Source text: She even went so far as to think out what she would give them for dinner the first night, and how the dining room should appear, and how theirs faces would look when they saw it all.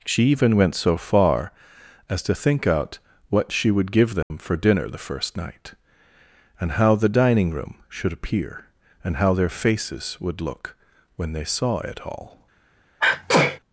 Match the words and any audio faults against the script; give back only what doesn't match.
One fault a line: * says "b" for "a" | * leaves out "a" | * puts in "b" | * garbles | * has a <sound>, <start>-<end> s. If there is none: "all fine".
* has a dropout, 4.2-4.3 s
* says "their" for "theirs"
* has a sneeze, 13.0-13.6 s